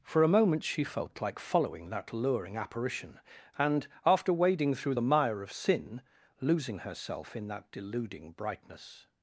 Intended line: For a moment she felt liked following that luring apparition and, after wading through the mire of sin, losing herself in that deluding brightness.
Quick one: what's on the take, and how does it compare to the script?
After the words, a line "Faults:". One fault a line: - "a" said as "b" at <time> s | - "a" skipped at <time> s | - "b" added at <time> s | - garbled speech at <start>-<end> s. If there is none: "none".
For a moment she felt like following that luring apparition and, after wading through the mire of sin, losing herself in that deluding brightness.
Faults:
- "liked" said as "like" at 1.2 s